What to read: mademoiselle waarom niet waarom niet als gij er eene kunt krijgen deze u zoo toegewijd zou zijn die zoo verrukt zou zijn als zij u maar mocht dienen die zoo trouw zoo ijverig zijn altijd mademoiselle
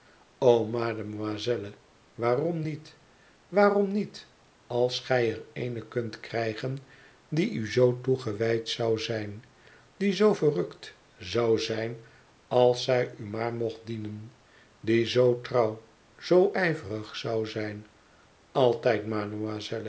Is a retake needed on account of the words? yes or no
yes